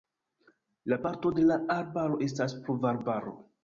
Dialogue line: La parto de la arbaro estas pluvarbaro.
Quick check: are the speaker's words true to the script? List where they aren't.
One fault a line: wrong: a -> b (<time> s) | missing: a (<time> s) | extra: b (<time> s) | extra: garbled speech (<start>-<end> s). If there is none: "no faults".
no faults